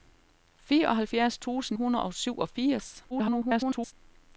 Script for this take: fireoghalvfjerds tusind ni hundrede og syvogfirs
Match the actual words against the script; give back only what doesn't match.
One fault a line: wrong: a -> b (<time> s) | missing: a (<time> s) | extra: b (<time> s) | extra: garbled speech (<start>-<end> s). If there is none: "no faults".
missing: ni (1.8 s)
extra: garbled speech (3.1-3.9 s)